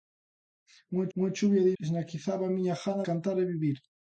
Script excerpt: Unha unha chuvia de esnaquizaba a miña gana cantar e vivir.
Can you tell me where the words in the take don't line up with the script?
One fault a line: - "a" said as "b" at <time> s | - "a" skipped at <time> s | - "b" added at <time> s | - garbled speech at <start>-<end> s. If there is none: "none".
none